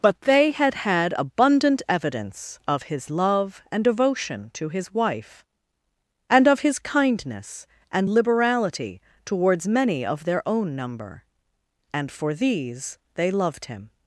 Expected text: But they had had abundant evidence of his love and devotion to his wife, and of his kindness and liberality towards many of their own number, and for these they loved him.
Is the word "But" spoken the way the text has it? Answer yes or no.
yes